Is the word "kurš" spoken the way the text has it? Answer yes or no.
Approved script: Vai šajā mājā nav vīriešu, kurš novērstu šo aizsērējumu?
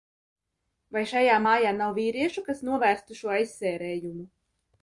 no